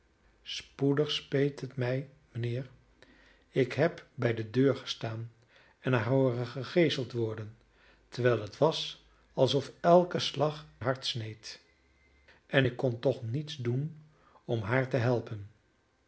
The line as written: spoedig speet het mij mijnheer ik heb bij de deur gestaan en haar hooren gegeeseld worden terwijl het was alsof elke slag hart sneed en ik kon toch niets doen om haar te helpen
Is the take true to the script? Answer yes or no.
yes